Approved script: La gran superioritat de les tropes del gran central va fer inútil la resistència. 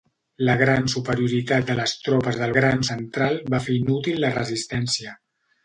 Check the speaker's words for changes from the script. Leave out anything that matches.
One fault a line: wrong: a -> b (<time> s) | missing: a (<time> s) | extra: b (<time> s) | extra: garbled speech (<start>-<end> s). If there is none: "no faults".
no faults